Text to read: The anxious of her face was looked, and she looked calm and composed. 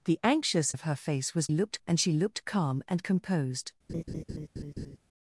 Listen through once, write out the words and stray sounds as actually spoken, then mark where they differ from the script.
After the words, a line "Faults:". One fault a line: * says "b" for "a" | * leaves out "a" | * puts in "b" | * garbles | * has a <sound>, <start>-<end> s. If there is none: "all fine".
The anxious of her face was looked, and she looked calm and composed.
Faults:
* has a laugh, 3.9-5.0 s